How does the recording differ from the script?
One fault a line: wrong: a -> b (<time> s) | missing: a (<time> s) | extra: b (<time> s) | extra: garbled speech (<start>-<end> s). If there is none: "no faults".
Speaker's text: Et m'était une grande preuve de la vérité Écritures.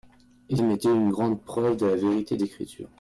no faults